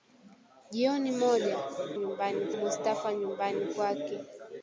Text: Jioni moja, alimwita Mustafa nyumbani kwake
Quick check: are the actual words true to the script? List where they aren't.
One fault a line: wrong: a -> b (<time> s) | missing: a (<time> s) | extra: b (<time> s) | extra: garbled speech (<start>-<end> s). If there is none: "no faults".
wrong: alimwita -> nyumbani (1.9 s)